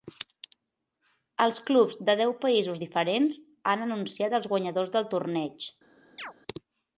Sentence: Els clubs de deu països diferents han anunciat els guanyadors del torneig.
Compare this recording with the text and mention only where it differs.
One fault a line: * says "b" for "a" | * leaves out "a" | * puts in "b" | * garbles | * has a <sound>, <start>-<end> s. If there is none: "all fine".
* has a chirp, 6.2-6.3 s